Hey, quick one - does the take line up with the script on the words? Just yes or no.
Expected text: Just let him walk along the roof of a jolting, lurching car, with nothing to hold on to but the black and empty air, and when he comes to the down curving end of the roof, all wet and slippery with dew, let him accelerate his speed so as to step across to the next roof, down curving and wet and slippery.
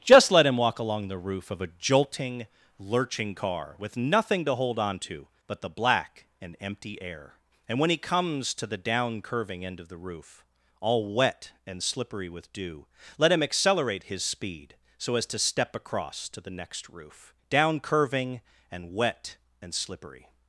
yes